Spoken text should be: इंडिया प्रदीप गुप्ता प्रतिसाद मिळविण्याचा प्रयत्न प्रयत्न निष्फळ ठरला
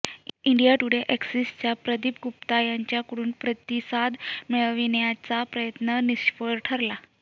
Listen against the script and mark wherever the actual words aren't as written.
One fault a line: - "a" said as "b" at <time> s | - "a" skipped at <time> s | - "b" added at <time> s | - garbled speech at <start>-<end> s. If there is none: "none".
- "टुडे अॅक्सिसच्या" added at 0.7 s
- "यांच्याकडून" added at 2.6 s
- "प्रयत्न" skipped at 6.0 s